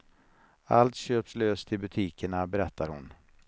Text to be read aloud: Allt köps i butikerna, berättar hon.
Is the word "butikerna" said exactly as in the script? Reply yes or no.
yes